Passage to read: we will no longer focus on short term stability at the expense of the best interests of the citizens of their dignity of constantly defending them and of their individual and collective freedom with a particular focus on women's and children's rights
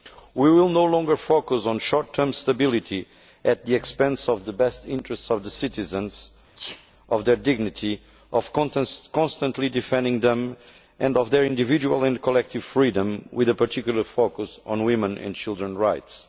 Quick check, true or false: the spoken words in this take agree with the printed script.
true